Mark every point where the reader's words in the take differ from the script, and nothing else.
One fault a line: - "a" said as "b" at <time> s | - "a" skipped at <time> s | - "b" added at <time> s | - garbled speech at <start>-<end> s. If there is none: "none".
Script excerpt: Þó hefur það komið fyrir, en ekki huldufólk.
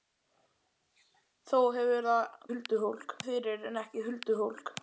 - "komið" said as "huldufólk" at 2.5 s